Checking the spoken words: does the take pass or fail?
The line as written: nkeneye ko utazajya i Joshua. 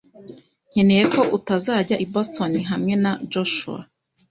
fail